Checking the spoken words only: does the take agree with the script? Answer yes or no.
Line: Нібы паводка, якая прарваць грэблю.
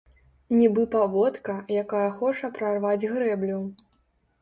no